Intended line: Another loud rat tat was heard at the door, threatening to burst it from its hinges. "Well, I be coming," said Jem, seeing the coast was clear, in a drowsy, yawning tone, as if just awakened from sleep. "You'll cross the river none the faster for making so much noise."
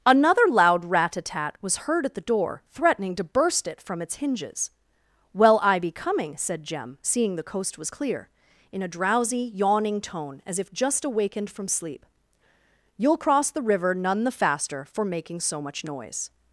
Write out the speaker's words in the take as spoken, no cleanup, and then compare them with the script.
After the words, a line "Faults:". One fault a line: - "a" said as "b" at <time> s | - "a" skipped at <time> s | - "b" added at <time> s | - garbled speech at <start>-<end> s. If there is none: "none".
Another loud rat a tat was heard at the door, threatening to burst it from its hinges. "Well, I be coming," said Jem, seeing the coast was clear, in a drowsy, yawning tone, as if just awakened from sleep. "You'll cross the river none the faster for making so much noise."
Faults:
- "a" added at 1.1 s